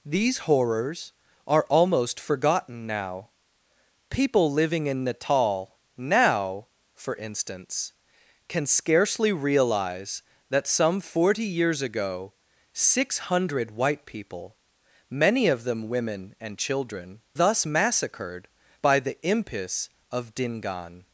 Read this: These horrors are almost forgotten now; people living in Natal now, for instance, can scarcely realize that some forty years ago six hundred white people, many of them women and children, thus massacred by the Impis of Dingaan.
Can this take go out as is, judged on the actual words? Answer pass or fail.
pass